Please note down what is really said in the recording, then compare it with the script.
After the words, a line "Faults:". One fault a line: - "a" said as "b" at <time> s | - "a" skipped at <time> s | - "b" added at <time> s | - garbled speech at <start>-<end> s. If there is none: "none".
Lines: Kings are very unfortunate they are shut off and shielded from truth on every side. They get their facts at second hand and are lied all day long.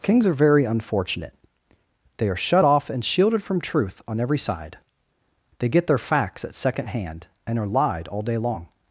Kings are very unfortunate they are shut off and shielded from truth on every side. They get their facts at second hand and are lied all day long.
Faults:
none